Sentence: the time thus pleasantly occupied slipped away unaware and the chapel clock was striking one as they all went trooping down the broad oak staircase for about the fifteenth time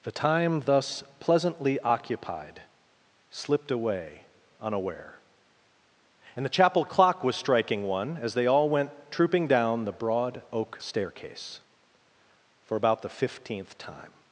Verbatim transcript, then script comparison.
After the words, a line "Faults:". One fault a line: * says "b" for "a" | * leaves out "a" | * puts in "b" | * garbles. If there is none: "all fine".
the time thus pleasantly occupied slipped away unaware and the chapel clock was striking one as they all went trooping down the broad oak staircase for about the fifteenth time
Faults:
all fine